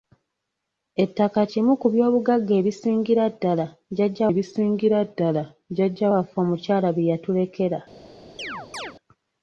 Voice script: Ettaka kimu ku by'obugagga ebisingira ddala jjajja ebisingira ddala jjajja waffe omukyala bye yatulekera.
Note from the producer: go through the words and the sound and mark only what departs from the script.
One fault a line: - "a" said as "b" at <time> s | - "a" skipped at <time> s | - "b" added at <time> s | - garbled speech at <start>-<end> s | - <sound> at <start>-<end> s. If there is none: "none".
- chirp at 8.4-8.9 s